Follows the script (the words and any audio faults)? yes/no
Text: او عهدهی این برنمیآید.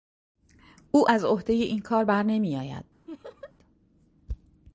no